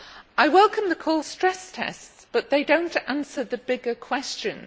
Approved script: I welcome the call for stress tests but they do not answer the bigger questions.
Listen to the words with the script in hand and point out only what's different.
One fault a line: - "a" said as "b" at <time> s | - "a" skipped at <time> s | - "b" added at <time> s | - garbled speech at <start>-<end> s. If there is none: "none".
- "for" skipped at 1.2 s